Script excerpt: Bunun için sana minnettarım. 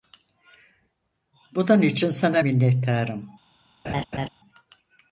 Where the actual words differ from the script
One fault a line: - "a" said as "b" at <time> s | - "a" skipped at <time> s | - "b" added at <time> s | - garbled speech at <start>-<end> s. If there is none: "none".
none